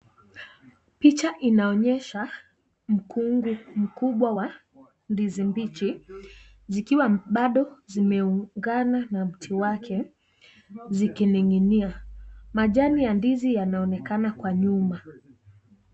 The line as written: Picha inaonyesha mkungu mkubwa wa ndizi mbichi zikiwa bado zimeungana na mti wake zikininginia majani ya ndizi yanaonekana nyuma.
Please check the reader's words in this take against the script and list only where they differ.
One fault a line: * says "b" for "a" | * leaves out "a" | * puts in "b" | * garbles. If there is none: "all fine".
* puts in "kwa"